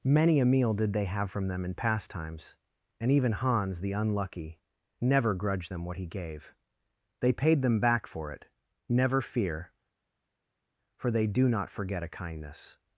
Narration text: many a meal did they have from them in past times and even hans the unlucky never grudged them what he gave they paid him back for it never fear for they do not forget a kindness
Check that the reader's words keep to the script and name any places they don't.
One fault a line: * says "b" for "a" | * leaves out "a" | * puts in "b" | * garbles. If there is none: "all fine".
* says "them" for "him"